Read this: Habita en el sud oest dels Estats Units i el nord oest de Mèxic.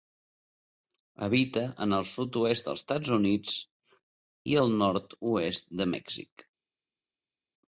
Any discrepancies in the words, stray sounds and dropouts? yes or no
no